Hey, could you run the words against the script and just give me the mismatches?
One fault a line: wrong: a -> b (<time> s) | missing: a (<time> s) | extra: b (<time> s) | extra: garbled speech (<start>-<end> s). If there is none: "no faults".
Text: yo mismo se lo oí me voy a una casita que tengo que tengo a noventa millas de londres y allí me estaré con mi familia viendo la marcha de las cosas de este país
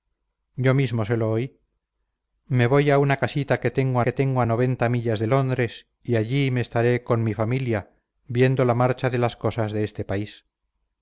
no faults